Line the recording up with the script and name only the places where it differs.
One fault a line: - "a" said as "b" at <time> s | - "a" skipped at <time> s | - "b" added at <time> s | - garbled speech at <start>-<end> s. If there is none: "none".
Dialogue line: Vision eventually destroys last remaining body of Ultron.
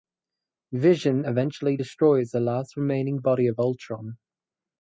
- "the" added at 2.3 s